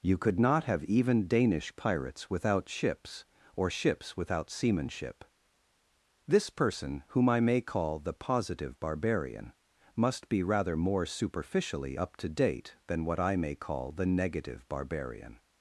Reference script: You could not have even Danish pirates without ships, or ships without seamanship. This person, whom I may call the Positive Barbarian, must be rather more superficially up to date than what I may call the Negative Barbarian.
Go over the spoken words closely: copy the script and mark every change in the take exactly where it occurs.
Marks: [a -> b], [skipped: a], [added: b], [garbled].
You could not have even Danish pirates without ships, or ships without seamanship. This person, whom I may call the Positive Barbarian, must be rather more superficially up to date than what I may call the Negative Barbarian.